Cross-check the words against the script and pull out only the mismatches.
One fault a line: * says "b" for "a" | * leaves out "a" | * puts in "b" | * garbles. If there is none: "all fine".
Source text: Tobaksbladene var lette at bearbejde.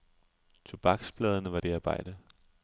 * leaves out "lette at"